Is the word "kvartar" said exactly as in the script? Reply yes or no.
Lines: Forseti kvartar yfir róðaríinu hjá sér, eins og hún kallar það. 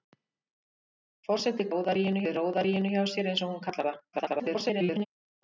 no